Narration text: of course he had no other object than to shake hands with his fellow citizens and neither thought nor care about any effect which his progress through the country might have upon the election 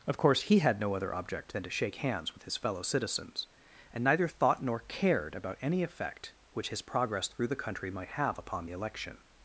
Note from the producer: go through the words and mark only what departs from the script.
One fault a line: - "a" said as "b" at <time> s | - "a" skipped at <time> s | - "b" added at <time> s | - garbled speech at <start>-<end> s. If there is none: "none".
- "care" said as "cared" at 4.8 s